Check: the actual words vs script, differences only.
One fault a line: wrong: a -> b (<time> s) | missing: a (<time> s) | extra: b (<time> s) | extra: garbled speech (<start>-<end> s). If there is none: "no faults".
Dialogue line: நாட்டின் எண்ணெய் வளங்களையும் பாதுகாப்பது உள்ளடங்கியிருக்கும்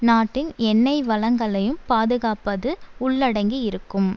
no faults